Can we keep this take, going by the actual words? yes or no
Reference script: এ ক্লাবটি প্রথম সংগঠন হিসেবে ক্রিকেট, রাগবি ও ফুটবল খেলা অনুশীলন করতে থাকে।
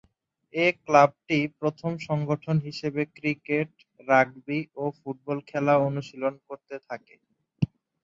yes